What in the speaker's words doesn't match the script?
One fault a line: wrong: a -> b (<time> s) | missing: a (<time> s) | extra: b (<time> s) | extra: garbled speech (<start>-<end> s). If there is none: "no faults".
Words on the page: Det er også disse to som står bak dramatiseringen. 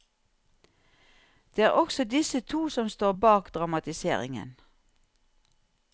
no faults